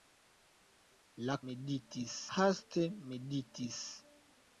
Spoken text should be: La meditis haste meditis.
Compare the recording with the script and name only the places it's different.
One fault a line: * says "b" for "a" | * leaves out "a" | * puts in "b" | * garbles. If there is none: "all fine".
all fine